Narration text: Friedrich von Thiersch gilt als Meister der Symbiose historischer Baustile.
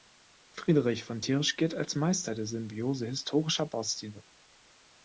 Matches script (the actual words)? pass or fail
pass